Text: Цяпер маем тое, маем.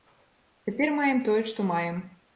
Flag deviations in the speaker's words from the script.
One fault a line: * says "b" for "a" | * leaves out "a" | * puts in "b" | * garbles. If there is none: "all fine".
* puts in "што"